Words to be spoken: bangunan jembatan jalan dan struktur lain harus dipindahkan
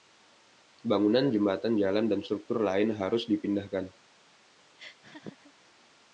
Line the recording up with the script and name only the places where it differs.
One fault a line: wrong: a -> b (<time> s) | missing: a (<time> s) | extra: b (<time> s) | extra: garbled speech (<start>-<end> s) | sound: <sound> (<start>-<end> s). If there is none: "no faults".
sound: laugh (4.8-5.5 s)